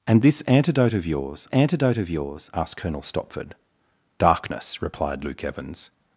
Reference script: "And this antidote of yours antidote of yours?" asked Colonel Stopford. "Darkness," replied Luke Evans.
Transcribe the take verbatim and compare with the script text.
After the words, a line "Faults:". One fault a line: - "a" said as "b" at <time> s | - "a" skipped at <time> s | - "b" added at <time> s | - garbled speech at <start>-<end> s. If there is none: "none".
"And this antidote of yours antidote of yours?" asked Colonel Stopford. "Darkness," replied Luke Evans.
Faults:
none